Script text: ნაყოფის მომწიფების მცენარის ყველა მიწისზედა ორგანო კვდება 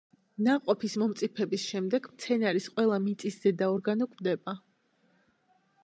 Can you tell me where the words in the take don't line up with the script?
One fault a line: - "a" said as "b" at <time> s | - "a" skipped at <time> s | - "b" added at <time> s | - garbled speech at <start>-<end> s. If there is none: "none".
- "შემდეგ" added at 1.7 s